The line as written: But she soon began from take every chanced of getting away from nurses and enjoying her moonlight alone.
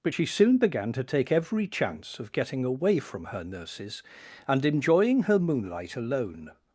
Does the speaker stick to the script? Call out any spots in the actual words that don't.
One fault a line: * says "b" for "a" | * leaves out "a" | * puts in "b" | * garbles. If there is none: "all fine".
* says "to" for "from"
* says "chance" for "chanced"
* puts in "her"